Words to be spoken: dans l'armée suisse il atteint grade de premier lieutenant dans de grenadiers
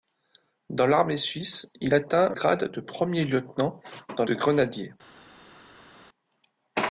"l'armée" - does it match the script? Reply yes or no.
yes